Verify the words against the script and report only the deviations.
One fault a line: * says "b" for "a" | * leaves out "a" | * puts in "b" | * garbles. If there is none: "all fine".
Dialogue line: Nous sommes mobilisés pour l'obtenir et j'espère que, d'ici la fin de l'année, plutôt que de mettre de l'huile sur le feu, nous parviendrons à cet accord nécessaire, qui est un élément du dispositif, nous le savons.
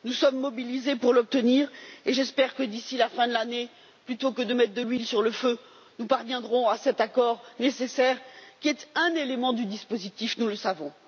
all fine